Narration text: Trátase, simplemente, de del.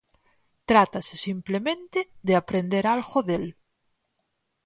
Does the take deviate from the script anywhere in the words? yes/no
yes